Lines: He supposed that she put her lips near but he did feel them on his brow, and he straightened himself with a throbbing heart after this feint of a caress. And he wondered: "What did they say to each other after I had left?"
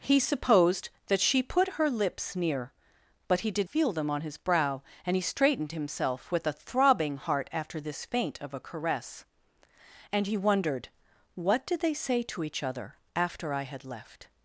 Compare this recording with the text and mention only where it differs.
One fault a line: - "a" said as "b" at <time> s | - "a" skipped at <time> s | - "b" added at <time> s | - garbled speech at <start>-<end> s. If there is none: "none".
none